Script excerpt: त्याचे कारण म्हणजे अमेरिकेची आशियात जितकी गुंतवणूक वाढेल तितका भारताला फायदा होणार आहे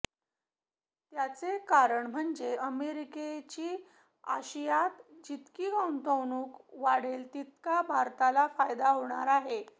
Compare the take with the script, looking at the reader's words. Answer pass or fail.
pass